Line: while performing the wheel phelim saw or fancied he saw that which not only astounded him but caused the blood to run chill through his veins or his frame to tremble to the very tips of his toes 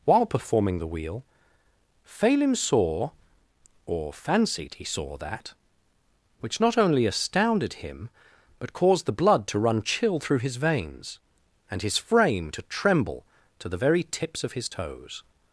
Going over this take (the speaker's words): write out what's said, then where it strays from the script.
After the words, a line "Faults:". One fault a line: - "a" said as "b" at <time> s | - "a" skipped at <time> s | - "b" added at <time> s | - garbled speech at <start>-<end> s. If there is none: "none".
while performing the wheel phelim saw or fancied he saw that which not only astounded him but caused the blood to run chill through his veins and his frame to tremble to the very tips of his toes
Faults:
- "or" said as "and" at 11.7 s